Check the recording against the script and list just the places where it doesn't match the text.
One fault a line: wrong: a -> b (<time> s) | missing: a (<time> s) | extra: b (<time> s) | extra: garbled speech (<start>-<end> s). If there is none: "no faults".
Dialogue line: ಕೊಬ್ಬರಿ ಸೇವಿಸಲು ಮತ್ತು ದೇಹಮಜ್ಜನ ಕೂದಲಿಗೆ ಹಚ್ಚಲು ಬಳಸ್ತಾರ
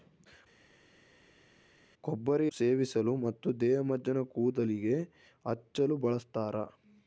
no faults